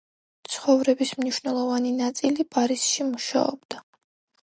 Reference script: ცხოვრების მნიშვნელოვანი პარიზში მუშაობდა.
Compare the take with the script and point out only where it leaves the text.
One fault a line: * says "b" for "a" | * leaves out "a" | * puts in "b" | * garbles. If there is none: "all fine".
* puts in "ნაწილი"